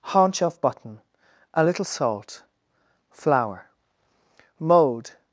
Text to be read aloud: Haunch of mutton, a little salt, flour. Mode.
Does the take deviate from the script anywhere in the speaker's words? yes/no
yes